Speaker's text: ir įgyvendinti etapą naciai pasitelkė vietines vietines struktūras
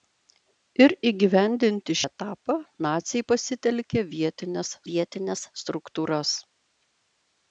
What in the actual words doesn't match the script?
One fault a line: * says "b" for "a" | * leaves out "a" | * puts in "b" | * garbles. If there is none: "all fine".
all fine